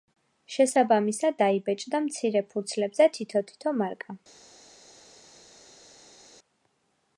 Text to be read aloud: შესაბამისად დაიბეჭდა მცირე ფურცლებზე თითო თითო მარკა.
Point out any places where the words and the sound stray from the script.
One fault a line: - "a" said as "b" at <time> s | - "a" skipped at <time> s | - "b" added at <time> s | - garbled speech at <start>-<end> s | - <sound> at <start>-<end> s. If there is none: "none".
none